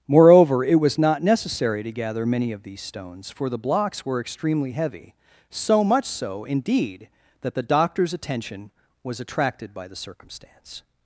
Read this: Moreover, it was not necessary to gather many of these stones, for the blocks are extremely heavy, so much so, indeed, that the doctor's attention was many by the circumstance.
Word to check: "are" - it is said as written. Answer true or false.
false